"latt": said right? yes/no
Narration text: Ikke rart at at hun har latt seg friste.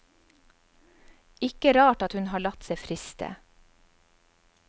yes